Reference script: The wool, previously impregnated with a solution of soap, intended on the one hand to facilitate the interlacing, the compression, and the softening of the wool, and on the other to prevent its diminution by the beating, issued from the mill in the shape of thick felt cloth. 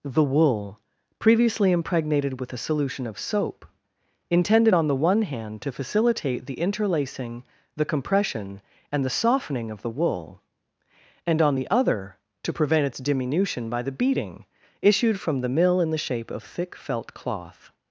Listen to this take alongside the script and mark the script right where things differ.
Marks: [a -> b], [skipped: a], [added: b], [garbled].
The wool, previously impregnated with a solution of soap, intended on the one hand to facilitate the interlacing, the compression, and the softening of the wool, and on the other to prevent its diminution by the beating, issued from the mill in the shape of thick felt cloth.